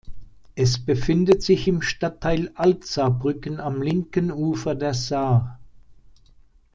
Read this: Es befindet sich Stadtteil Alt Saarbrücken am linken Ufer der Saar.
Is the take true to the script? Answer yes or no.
no